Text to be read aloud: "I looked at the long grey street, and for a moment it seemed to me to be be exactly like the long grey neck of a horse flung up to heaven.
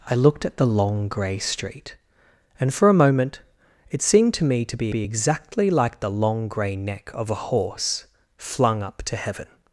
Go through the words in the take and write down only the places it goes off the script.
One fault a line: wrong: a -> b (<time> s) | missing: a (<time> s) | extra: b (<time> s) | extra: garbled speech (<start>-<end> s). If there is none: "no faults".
no faults